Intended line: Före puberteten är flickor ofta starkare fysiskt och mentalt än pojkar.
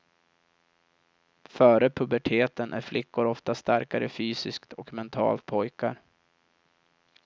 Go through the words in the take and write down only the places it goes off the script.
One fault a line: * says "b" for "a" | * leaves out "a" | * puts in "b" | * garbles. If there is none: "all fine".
* leaves out "än"